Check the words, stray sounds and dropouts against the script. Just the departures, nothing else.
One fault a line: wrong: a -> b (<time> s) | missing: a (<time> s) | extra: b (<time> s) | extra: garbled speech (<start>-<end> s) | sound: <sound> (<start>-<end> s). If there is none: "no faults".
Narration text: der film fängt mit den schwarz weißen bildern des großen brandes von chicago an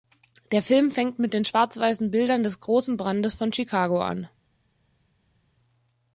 no faults